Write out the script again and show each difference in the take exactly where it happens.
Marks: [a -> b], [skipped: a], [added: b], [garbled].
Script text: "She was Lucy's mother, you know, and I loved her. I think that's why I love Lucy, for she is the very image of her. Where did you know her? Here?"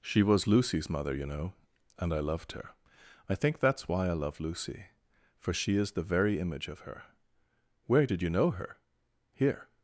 "She was Lucy's mother, you know, and I loved her. I think that's why I love Lucy, for she is the very image of her. Where did you know her? Here?"